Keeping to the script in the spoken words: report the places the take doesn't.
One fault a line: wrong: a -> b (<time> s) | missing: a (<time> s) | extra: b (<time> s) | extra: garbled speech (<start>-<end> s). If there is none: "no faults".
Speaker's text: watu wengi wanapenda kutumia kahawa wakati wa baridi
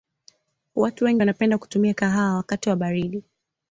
no faults